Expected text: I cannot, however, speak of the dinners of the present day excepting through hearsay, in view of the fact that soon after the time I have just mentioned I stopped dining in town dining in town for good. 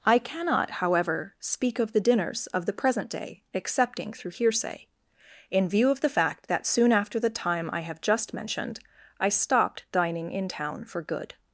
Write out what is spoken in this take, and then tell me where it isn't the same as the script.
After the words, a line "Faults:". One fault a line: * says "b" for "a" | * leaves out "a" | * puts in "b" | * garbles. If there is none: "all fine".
I cannot, however, speak of the dinners of the present day excepting through hearsay, in view of the fact that soon after the time I have just mentioned I stopped dining in town for good.
Faults:
* leaves out "dining in town"